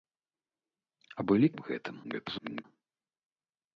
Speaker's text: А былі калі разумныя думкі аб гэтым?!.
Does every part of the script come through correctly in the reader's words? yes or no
no